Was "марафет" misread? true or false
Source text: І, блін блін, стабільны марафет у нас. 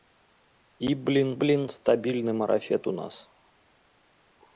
false